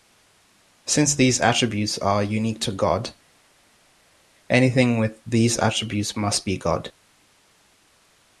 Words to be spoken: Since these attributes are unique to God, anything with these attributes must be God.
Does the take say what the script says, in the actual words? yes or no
yes